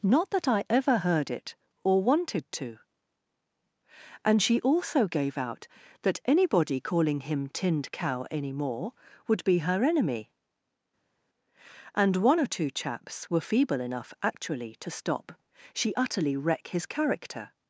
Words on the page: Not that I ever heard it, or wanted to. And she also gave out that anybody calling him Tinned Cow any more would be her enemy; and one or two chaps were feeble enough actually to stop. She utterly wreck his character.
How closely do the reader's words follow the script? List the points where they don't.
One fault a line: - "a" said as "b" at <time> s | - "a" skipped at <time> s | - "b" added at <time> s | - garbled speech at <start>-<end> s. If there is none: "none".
none